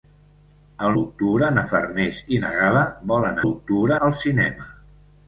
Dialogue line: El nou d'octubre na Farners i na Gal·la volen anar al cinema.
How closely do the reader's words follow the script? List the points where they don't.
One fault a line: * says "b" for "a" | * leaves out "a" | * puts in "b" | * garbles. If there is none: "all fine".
* leaves out "nou"
* says "d'octubre" for "anar"